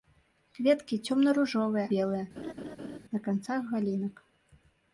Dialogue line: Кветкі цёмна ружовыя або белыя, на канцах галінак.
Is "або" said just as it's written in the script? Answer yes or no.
no